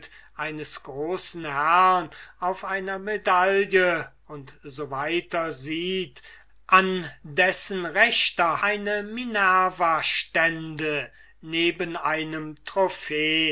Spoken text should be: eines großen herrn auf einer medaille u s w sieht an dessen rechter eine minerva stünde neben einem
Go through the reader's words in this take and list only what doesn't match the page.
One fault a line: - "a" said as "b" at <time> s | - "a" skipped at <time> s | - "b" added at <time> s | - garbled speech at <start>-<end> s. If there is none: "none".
none